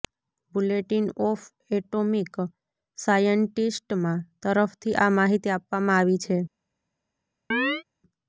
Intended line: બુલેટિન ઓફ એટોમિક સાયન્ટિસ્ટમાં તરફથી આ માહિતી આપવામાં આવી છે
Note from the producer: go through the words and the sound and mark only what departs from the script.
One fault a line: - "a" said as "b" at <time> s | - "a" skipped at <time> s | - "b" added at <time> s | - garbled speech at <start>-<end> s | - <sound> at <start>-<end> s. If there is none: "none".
- chirp at 7.5-7.8 s